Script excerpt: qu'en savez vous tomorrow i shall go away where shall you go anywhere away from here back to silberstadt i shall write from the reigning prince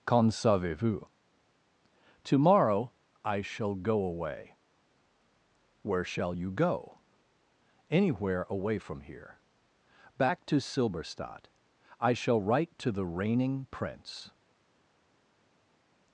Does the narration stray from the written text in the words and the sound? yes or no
yes